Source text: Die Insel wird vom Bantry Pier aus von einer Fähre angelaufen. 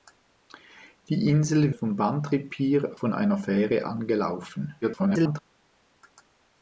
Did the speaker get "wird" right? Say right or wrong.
wrong